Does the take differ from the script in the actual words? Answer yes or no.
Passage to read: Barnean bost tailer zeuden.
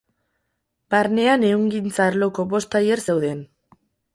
yes